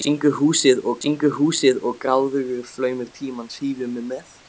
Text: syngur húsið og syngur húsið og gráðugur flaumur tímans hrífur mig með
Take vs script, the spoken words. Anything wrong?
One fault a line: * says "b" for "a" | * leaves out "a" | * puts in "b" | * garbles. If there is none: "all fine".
all fine